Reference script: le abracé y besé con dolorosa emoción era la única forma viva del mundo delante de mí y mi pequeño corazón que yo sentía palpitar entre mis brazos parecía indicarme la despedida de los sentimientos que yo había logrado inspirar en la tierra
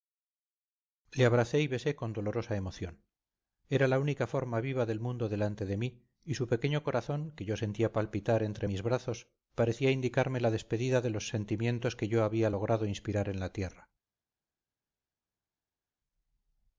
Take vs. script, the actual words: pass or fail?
fail